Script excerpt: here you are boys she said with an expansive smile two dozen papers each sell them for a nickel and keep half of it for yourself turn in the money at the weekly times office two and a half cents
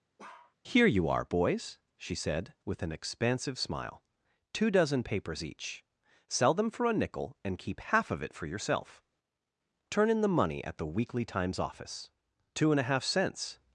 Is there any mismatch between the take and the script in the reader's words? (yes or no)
no